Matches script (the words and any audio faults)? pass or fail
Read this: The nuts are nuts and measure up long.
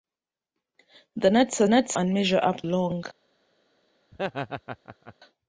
fail